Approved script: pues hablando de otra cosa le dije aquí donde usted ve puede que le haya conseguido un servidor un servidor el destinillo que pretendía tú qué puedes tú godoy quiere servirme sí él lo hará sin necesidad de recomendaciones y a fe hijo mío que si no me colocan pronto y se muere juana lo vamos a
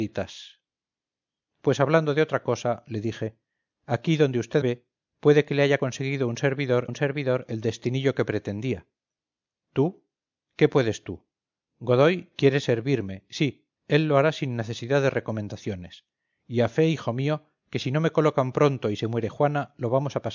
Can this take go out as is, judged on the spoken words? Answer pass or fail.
pass